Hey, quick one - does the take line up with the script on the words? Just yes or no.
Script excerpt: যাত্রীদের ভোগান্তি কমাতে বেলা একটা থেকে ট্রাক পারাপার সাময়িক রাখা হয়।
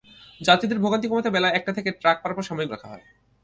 yes